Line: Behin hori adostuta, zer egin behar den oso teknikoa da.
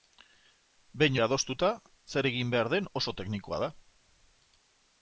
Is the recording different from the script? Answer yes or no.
yes